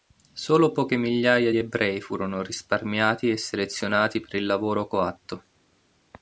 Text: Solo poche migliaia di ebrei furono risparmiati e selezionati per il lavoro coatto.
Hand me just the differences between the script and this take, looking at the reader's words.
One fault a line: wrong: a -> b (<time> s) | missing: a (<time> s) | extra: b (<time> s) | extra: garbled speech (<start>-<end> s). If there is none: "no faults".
no faults